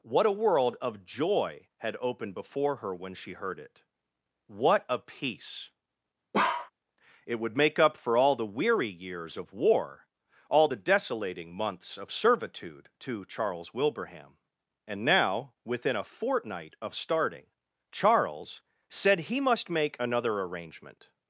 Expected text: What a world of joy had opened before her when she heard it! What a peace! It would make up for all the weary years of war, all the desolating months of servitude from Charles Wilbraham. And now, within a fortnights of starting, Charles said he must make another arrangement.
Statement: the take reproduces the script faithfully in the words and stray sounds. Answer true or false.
false